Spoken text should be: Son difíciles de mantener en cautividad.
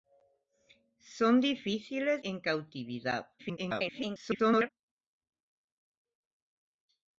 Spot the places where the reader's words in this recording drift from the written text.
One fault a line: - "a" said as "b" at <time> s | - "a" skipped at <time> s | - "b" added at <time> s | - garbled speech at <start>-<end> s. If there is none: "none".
- "de mantener" skipped at 2.2 s
- garbled speech at 3.4-4.7 s